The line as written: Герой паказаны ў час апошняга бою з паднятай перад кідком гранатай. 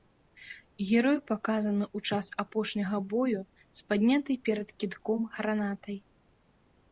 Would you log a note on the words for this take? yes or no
no